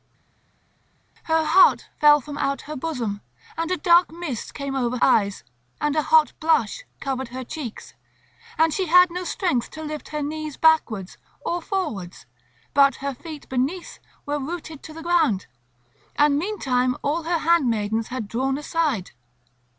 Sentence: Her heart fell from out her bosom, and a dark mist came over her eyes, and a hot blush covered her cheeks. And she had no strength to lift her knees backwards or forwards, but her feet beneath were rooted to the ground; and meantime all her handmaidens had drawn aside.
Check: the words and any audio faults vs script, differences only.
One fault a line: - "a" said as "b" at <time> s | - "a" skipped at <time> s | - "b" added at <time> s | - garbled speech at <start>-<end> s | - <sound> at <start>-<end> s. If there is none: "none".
- "her" skipped at 5.0 s